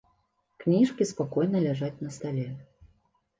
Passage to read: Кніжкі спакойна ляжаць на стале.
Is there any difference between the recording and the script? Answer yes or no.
no